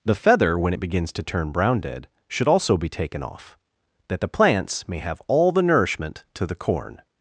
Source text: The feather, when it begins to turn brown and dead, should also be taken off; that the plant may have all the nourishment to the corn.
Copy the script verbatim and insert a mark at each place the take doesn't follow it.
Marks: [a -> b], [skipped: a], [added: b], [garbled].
The feather, when it begins to turn brown [skipped: and] dead, should also be taken off; that the [plant -> plants] may have all the nourishment to the corn.